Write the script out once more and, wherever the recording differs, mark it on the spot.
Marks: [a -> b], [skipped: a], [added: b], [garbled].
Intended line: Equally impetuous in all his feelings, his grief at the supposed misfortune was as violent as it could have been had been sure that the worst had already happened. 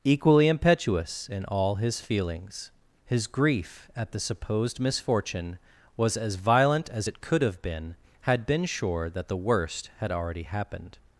Equally impetuous in all his feelings, his grief at the supposed misfortune was as violent as it could have been had been sure that the worst had already happened.